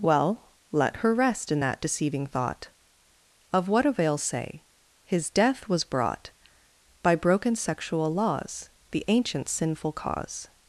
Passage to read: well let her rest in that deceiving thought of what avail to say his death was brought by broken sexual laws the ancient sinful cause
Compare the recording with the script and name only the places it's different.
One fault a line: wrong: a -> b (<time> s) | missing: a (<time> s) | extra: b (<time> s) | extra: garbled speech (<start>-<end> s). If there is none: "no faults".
missing: to (4.2 s)